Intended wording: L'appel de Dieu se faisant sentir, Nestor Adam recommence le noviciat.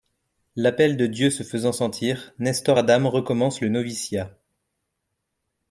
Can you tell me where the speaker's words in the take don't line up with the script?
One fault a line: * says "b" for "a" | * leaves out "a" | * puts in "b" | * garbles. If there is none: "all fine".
all fine